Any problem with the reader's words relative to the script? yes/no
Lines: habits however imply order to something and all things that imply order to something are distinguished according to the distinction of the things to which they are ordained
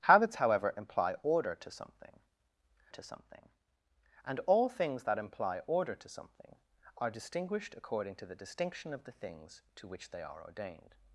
yes